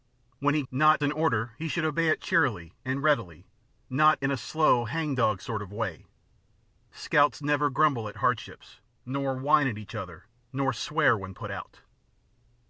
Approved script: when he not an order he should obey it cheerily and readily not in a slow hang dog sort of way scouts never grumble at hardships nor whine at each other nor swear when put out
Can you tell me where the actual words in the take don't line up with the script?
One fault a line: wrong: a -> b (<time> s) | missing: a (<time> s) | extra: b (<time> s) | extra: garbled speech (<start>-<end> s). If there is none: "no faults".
no faults